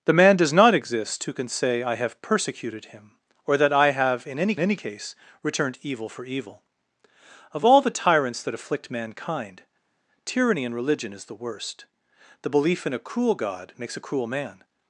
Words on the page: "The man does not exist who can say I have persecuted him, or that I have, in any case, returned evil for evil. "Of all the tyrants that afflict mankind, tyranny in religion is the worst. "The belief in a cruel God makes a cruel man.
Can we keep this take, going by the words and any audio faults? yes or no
no